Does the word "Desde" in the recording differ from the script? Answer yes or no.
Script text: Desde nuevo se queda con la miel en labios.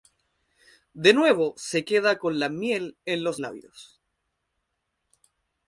yes